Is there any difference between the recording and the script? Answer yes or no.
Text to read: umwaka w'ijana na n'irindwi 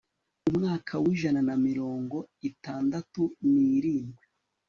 yes